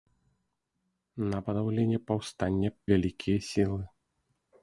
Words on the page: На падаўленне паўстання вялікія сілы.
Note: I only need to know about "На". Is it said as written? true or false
true